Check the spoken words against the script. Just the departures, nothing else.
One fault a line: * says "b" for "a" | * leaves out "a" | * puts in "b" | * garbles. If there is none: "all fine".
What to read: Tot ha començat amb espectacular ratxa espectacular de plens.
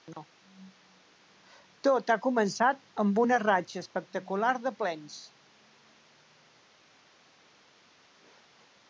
* says "una" for "espectacular"